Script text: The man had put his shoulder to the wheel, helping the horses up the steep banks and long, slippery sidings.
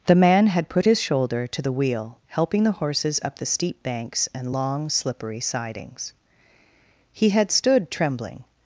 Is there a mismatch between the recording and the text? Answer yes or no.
yes